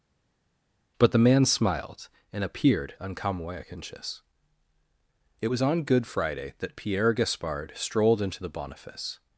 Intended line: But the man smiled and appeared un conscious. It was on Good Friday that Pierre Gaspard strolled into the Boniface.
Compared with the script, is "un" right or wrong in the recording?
wrong